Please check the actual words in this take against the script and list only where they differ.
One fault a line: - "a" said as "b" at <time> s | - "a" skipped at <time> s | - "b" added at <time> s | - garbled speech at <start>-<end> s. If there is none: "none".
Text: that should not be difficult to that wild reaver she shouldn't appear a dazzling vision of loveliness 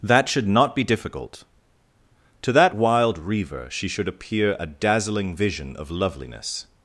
- "shouldn't" said as "should" at 3.9 s